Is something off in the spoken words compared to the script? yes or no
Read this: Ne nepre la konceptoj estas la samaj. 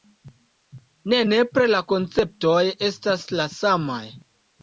no